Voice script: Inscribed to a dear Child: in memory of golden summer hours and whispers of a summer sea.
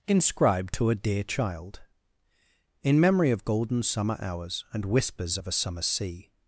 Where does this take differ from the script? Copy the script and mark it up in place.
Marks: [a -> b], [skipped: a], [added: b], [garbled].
Inscribed to a dear Child: in memory of golden summer hours and whispers of a summer sea.